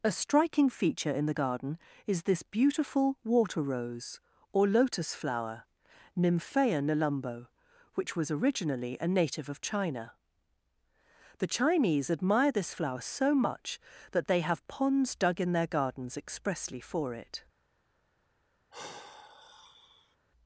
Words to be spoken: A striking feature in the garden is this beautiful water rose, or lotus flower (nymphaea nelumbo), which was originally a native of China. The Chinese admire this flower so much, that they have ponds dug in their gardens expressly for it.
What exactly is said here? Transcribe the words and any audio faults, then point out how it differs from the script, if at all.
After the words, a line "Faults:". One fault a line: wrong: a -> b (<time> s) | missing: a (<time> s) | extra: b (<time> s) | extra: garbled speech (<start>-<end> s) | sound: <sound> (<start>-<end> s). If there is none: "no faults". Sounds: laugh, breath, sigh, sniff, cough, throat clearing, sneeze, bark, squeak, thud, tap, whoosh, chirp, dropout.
A striking feature in the garden is this beautiful water rose, or lotus flower (nymphaea nelumbo), which was originally a native of China. The Chinese admire this flower so much, that they have ponds dug in their gardens expressly for it.
Faults:
sound: sigh (18.7-20.2 s)